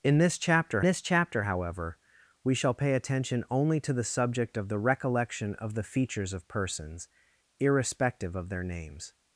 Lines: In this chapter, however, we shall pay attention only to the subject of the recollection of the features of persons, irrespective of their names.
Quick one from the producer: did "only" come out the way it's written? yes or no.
yes